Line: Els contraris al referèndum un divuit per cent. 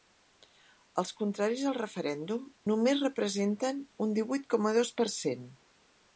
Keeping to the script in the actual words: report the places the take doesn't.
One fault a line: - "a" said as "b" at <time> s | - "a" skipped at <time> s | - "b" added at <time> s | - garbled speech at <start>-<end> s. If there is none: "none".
- "només representen" added at 2.7 s
- "coma dos" added at 4.6 s